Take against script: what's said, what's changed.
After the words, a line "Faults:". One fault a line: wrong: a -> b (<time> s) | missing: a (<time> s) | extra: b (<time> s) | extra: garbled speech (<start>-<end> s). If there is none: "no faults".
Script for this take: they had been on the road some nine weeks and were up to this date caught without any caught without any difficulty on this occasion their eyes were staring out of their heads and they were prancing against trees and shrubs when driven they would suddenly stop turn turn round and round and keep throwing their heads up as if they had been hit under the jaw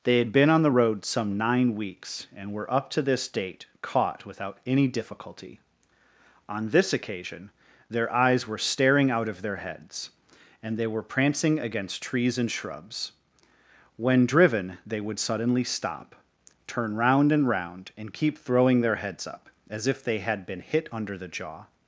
they had been on the road some nine weeks and were up to this date caught without any difficulty on this occasion their eyes were staring out of their heads and they were prancing against trees and shrubs when driven they would suddenly stop turn round and round and keep throwing their heads up as if they had been hit under the jaw
Faults:
missing: caught without any (4.9 s)
missing: turn (16.9 s)